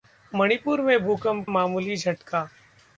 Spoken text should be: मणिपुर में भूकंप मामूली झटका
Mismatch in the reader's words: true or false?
false